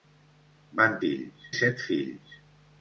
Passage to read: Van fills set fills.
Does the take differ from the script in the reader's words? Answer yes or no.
no